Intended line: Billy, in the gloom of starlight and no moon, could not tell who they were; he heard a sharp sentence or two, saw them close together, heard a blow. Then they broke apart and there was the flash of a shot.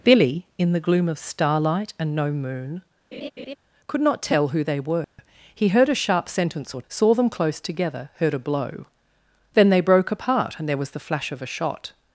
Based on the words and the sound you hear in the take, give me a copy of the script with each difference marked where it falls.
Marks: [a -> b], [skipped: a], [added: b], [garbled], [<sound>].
Billy, in the gloom of starlight and no moon, [laugh] could not tell who they were; [dropout] he heard a sharp sentence or [skipped: two,] saw them close together, heard a blow. Then they broke apart and there was the flash of a shot.